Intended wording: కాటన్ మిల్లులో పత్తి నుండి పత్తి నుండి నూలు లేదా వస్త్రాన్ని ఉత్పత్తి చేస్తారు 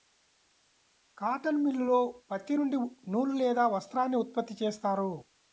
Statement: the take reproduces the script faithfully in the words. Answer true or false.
false